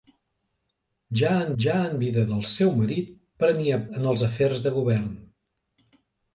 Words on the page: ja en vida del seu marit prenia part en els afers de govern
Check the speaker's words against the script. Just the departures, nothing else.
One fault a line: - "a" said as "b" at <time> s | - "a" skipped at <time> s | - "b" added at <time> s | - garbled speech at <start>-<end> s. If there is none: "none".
- "ja en" added at 1.6 s
- "part" skipped at 3.8 s